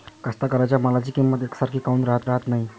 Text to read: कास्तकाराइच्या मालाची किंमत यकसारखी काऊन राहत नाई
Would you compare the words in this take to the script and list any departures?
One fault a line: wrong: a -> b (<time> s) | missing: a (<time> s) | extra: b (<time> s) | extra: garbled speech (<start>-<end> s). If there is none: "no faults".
extra: राहत (2.2 s)